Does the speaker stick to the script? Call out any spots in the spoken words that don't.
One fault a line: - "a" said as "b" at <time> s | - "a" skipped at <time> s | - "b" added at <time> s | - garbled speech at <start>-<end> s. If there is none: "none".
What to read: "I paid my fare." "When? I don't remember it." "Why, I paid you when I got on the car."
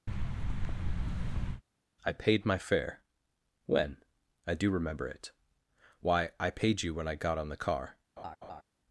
- "don't" said as "do" at 4.5 s